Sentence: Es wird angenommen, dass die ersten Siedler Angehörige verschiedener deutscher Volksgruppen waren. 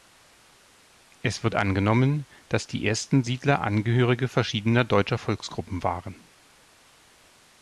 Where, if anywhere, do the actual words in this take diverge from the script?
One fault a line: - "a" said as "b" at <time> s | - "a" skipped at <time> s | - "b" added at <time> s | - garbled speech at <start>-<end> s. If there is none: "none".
none